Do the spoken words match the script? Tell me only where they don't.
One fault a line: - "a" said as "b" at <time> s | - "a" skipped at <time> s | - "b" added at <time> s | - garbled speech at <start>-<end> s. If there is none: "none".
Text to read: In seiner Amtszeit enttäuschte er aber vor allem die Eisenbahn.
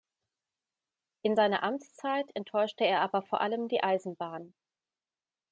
none